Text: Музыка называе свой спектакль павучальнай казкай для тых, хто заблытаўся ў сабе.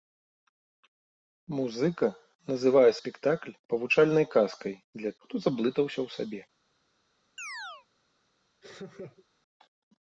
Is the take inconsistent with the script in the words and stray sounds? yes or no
yes